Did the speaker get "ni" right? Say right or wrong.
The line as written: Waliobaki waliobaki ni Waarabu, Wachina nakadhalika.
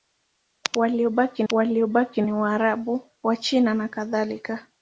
right